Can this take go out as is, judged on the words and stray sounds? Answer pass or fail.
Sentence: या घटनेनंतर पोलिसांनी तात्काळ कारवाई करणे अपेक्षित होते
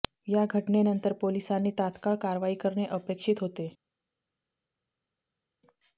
pass